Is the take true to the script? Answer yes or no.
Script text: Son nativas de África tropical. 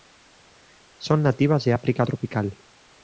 yes